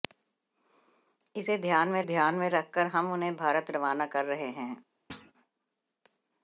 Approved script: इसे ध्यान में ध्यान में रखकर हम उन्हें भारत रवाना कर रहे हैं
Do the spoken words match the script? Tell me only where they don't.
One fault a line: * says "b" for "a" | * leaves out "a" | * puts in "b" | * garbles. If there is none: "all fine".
all fine